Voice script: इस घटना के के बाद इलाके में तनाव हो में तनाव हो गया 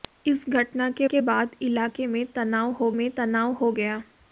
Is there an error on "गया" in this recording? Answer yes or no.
no